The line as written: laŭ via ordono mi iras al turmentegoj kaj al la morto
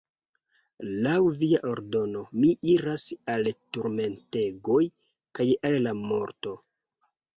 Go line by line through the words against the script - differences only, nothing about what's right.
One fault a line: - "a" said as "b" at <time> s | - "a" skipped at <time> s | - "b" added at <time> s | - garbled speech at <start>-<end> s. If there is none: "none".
none